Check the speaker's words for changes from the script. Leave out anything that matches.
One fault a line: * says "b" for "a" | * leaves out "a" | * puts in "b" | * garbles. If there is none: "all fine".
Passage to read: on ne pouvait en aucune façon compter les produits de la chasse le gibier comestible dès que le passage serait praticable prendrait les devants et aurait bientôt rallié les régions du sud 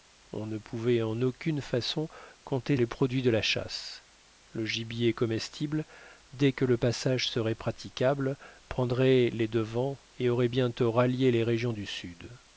all fine